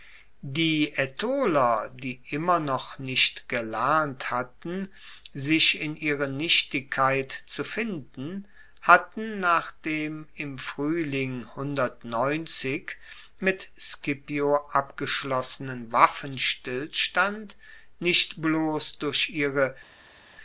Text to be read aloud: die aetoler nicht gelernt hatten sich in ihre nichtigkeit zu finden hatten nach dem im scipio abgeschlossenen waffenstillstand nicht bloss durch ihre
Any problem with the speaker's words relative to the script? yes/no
yes